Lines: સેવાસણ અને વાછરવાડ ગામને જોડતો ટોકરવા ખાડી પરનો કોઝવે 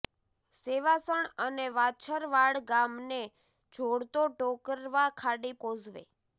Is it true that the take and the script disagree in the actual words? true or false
true